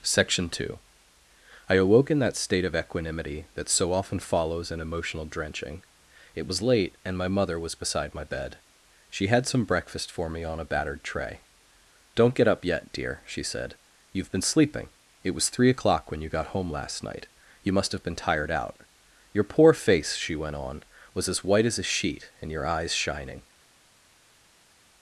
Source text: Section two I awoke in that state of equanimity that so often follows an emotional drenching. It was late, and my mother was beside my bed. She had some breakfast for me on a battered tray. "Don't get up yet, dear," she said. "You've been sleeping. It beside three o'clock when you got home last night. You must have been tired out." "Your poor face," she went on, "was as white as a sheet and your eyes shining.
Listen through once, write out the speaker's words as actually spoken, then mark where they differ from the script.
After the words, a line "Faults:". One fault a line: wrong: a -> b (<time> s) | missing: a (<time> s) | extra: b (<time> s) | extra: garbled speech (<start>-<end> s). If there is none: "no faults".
Section two I awoke in that state of equanimity that so often follows an emotional drenching. It was late, and my mother was beside my bed. She had some breakfast for me on a battered tray. "Don't get up yet, dear," she said. "You've been sleeping. It was three o'clock when you got home last night. You must have been tired out." "Your poor face," she went on, "was as white as a sheet and your eyes shining.
Faults:
wrong: beside -> was (15.3 s)